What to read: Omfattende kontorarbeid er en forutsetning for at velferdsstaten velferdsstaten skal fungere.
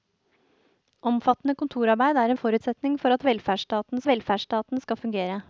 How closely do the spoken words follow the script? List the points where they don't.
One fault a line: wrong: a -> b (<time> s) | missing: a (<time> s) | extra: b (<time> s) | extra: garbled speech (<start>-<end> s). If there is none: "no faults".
no faults